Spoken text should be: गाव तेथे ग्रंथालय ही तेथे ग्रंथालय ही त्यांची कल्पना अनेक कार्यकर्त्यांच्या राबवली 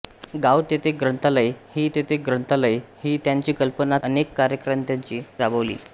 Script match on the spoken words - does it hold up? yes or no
yes